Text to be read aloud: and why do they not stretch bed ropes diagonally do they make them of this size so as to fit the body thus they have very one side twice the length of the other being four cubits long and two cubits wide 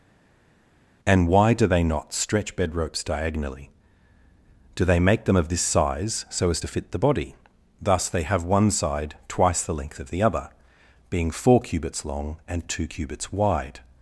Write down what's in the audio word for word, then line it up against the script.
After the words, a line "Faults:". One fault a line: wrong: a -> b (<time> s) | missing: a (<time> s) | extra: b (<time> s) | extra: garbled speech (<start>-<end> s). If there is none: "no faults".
and why do they not stretch bed ropes diagonally do they make them of this size so as to fit the body thus they have one side twice the length of the other being four cubits long and two cubits wide
Faults:
missing: very (8.4 s)